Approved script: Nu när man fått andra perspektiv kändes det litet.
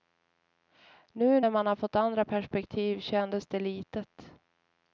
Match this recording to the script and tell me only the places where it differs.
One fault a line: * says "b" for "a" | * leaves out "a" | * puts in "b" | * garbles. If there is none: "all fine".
all fine